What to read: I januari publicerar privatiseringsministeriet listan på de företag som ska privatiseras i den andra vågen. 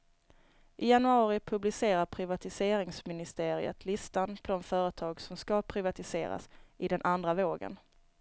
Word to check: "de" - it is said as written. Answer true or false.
true